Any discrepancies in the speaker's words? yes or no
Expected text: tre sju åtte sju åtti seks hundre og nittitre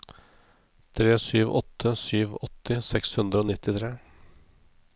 no